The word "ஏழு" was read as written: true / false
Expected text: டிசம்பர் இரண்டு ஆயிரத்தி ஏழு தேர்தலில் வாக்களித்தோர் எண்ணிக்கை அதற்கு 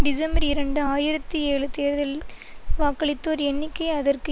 true